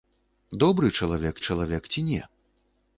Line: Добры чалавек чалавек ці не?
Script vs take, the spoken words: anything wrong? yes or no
no